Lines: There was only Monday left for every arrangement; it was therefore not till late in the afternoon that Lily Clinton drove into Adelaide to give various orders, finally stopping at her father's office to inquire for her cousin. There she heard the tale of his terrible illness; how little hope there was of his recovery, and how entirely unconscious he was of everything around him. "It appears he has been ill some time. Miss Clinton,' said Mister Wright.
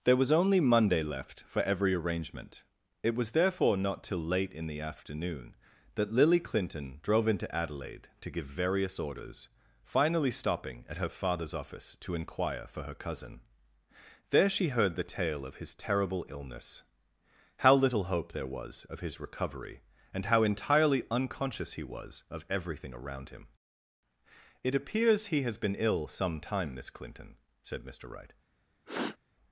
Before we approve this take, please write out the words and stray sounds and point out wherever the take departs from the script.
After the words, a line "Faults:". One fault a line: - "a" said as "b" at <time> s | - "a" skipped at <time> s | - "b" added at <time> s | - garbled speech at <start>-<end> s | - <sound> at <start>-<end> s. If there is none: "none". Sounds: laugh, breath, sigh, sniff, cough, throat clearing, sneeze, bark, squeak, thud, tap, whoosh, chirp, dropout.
There was only Monday left for every arrangement; it was therefore not till late in the afternoon that Lily Clinton drove into Adelaide to give various orders, finally stopping at her father's office to inquire for her cousin. There she heard the tale of his terrible illness; how little hope there was of his recovery, and how entirely unconscious he was of everything around him. "It appears he has been ill some time. Miss Clinton,' said Mister Wright.
Faults:
- sniff at 28.9-29.2 s